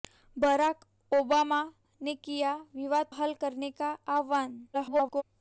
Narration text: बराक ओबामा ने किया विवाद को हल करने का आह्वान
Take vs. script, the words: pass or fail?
fail